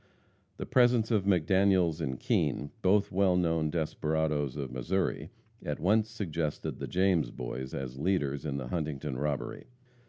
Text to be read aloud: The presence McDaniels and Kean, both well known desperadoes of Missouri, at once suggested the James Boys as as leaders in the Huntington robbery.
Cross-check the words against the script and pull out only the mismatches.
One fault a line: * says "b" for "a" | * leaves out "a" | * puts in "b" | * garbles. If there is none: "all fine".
* puts in "of"
* leaves out "as"